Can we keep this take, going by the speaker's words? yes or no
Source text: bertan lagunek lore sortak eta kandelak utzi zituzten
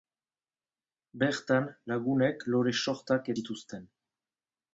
no